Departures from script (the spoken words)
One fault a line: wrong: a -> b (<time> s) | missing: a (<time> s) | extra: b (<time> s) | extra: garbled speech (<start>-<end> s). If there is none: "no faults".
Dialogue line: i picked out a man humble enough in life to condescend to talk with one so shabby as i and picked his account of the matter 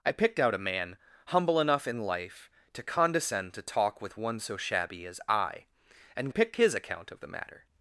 no faults